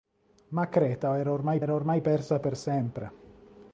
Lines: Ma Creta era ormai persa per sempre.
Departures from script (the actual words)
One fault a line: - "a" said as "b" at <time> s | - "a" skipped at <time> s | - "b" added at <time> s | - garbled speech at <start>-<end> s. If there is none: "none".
- "era ormai" added at 1.6 s